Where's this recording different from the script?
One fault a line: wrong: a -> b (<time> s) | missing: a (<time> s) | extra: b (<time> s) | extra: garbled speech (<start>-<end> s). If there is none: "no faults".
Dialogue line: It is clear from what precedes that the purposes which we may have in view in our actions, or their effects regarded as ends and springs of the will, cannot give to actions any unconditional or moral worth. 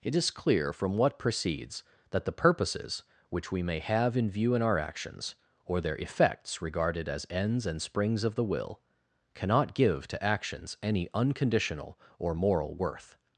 no faults